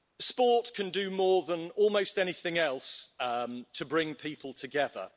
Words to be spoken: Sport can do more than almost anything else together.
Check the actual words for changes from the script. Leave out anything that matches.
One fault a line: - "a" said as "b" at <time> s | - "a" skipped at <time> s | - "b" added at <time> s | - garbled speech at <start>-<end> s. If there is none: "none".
- "to bring people" added at 3.2 s